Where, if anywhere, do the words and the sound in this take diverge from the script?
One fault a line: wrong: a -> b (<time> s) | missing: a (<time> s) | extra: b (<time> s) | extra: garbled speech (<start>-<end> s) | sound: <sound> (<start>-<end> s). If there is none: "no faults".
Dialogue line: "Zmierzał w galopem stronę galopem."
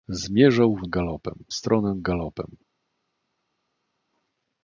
no faults